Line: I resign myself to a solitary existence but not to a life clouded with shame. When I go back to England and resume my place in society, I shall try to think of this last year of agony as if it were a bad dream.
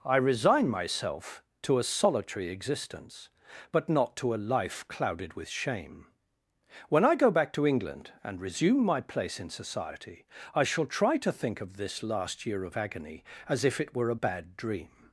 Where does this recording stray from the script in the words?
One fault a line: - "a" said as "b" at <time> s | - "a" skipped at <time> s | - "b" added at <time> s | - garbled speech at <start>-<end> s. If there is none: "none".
none